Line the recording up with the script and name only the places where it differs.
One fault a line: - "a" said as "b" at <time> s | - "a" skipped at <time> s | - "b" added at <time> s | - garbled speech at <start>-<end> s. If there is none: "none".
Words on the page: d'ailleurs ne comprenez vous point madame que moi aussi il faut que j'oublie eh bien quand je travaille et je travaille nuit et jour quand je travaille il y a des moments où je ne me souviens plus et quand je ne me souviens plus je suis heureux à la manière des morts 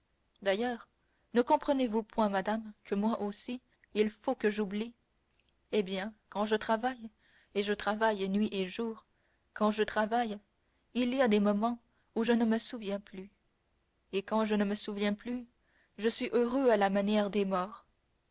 none